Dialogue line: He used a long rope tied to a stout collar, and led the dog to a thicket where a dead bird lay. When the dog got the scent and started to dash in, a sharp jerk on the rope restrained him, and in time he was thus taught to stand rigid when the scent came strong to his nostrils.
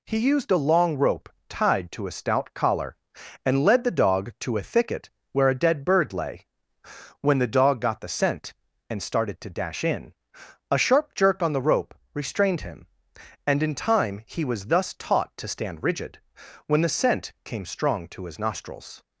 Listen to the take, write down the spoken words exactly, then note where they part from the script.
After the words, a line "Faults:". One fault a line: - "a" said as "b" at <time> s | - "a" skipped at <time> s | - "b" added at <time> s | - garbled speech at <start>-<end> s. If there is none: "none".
He used a long rope tied to a stout collar, and led the dog to a thicket where a dead bird lay. When the dog got the scent and started to dash in, a sharp jerk on the rope restrained him, and in time he was thus taught to stand rigid when the scent came strong to his nostrils.
Faults:
none